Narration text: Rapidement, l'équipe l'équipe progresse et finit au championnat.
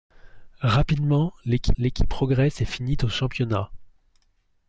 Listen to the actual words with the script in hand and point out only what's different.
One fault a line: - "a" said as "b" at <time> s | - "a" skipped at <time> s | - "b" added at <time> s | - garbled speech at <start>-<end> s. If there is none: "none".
none